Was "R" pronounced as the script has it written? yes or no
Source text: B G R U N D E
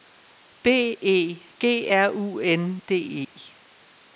yes